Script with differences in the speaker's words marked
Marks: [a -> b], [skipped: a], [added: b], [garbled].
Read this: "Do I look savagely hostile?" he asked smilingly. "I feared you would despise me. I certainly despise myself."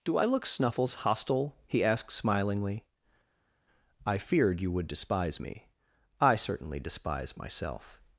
"Do I look [savagely -> snuffles] hostile?" he asked smilingly. "I feared you would despise me. I certainly despise myself."